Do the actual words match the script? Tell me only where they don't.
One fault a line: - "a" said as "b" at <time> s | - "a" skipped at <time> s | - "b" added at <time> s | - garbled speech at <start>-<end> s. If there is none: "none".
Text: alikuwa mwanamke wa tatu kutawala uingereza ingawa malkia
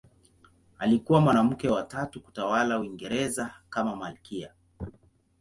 - "ingawa" said as "kama" at 3.7 s